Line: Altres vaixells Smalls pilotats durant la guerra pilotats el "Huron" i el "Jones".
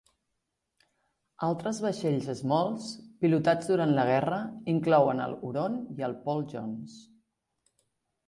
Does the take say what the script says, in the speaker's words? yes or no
no